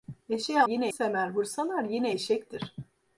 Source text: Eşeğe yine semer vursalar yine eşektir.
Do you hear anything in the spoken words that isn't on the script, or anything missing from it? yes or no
no